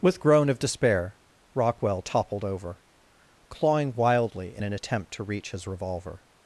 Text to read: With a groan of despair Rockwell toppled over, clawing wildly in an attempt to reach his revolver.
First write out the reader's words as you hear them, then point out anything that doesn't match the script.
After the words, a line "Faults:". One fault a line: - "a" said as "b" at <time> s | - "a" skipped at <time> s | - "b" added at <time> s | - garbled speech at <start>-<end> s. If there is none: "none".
With groan of despair Rockwell toppled over, clawing wildly in an attempt to reach his revolver.
Faults:
- "a" skipped at 0.2 s